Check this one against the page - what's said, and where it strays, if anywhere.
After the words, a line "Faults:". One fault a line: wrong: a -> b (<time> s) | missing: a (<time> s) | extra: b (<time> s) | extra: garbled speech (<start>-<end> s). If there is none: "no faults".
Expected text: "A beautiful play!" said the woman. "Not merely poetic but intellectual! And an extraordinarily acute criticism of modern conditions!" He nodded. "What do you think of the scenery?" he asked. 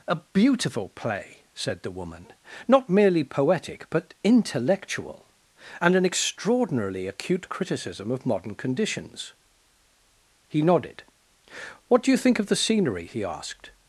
"A beautiful play!" said the woman. "Not merely poetic but intellectual! And an extraordinarily acute criticism of modern conditions!" He nodded. "What do you think of the scenery?" he asked.
Faults:
no faults